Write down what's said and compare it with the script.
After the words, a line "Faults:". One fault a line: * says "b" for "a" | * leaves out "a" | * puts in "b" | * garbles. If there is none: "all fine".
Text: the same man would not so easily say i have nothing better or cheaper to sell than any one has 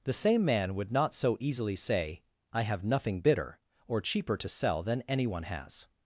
the same man would not so easily say i have nothing bitter or cheaper to sell than any one has
Faults:
* says "bitter" for "better"